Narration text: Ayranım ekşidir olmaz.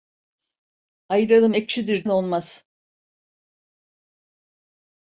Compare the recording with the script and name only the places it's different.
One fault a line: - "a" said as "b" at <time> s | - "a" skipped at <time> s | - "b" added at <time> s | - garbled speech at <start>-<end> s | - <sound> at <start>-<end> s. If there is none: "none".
none